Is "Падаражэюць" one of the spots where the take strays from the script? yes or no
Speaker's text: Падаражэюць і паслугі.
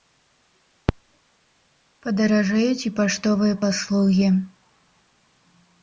no